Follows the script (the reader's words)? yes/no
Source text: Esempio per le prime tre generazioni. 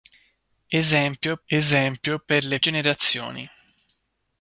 no